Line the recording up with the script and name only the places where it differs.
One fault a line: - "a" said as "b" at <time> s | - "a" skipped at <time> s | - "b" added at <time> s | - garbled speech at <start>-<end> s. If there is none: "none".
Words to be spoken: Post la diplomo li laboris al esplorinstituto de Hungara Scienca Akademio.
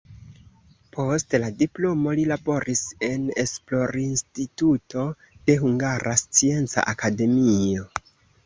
- "al" said as "en" at 3.1 s